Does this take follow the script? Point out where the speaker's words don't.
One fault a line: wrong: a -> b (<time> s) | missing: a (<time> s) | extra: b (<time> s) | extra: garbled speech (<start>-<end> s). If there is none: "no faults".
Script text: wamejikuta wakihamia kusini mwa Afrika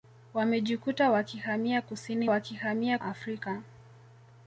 wrong: mwa -> wakihamia (2.3 s)